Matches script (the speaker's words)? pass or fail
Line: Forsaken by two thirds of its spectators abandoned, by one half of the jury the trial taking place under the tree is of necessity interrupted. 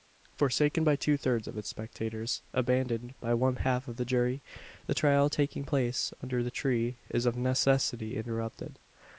pass